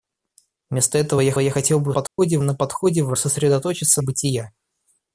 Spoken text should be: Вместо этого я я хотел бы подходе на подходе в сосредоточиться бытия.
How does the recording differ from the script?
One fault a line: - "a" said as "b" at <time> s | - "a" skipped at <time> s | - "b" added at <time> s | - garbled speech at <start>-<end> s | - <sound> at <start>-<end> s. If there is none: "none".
- dropout at 2.1-2.2 s